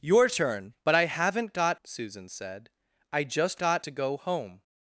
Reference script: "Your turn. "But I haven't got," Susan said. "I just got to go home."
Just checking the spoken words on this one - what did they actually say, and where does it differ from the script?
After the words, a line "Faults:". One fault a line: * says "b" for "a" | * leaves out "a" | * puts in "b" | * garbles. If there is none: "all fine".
"Your turn. "But I haven't got," Susan said. "I just got to go home."
Faults:
all fine